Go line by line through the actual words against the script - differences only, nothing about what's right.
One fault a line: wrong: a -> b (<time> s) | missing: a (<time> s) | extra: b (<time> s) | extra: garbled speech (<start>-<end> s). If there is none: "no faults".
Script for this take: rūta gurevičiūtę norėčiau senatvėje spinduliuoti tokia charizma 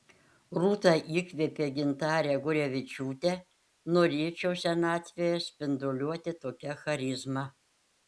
extra: įkvėpė gintarę (1.2 s)